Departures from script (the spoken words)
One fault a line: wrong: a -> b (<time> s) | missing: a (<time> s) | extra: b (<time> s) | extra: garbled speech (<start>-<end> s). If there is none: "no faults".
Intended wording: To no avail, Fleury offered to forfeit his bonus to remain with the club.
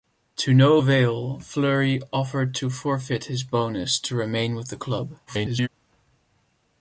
extra: garbled speech (5.3-5.7 s)